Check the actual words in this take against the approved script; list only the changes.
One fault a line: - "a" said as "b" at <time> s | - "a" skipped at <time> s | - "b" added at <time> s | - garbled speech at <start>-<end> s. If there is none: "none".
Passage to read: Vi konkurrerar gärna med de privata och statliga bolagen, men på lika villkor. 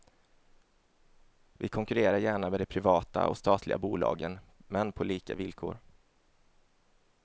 none